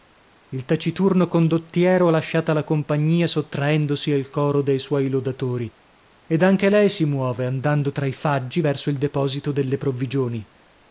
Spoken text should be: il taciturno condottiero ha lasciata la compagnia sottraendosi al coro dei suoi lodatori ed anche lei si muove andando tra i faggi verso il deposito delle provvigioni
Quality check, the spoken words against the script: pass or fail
pass